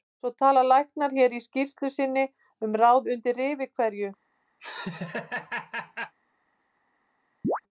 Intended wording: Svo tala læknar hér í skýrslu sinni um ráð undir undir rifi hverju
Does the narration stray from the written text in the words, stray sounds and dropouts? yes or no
yes